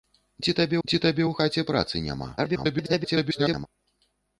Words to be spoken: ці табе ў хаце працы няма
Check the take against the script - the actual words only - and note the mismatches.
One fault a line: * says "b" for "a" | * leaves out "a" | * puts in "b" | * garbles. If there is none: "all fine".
* puts in "ці табе"
* garbles